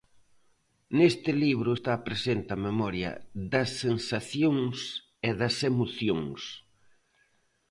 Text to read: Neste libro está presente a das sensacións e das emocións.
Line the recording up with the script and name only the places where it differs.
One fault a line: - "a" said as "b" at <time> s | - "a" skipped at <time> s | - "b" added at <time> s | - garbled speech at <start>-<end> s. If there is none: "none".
- "memoria" added at 2.7 s